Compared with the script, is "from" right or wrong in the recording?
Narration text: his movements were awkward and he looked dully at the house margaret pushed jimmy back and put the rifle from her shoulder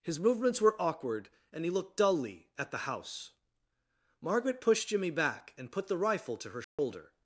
wrong